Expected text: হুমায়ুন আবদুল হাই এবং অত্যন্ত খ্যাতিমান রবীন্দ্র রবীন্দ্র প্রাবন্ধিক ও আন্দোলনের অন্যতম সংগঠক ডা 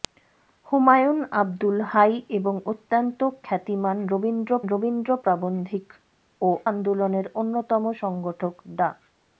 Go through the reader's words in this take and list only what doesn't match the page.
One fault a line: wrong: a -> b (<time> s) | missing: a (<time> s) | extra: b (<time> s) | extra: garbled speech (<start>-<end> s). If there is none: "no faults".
no faults